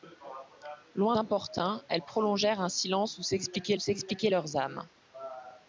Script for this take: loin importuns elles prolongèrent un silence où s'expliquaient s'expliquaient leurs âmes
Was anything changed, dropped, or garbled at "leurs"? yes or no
no